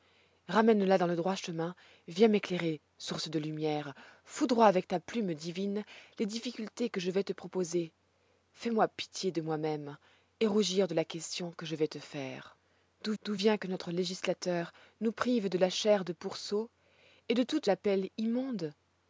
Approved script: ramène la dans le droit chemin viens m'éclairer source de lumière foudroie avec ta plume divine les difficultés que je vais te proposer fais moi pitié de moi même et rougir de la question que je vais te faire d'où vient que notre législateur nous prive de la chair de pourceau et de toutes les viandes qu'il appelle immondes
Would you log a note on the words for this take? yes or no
yes